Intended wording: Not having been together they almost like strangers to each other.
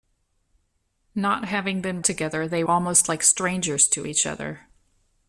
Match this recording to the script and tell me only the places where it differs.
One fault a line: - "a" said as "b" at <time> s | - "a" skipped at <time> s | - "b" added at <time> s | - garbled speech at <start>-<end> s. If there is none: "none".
none